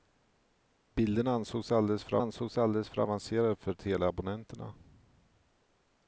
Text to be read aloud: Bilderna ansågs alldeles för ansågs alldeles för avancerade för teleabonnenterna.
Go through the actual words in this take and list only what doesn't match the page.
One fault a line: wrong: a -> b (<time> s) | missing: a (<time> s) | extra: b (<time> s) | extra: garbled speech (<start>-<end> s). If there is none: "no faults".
no faults